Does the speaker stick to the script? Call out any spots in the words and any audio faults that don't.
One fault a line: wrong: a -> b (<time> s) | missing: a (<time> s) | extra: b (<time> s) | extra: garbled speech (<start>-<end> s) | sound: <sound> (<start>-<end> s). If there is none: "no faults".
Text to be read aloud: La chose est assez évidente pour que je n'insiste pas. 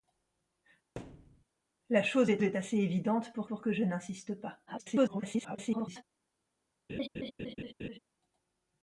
sound: thud (1.0-1.4 s)
extra: est (2.4 s)
extra: pour (3.5 s)
extra: garbled speech (4.7-6.0 s)
sound: laugh (6.9-8.0 s)